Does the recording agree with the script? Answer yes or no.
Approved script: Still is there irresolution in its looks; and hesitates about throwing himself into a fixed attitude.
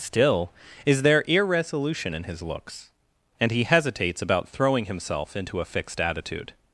no